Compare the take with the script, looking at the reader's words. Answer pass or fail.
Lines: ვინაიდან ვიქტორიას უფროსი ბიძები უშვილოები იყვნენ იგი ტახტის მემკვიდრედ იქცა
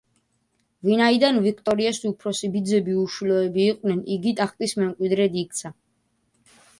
pass